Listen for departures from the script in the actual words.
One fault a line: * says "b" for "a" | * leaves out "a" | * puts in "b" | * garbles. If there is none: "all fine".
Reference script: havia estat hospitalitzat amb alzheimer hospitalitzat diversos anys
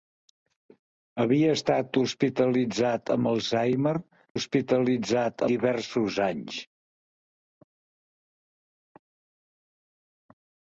all fine